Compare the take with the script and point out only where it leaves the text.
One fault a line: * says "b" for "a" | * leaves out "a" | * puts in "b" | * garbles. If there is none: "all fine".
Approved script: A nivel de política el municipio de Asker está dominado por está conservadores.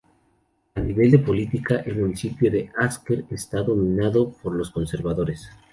* says "los" for "está"